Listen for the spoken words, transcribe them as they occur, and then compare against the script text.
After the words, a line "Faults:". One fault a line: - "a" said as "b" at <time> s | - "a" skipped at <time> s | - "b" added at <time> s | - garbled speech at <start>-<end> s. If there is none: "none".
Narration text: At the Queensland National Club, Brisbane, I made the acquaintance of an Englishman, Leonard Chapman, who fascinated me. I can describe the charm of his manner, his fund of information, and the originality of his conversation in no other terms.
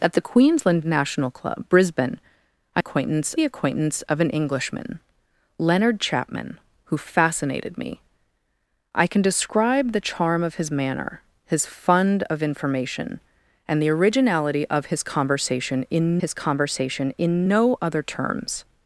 At the Queensland National Club, Brisbane, I acquaintance the acquaintance of an Englishman, Leonard Chapman, who fascinated me. I can describe the charm of his manner, his fund of information, and the originality of his conversation in his conversation in no other terms.
Faults:
- "made" said as "acquaintance" at 2.8 s
- "his conversation in" added at 16.2 s